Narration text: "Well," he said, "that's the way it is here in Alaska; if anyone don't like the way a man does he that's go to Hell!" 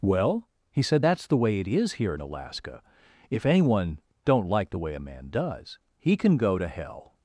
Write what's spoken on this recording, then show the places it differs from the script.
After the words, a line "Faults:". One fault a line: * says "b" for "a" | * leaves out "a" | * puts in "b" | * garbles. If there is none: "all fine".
"Well," he said, "that's the way it is here in Alaska; if anyone don't like the way a man does he can go to Hell!"
Faults:
* says "can" for "that's"